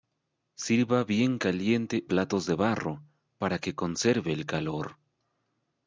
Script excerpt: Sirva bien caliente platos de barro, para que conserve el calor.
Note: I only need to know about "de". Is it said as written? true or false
true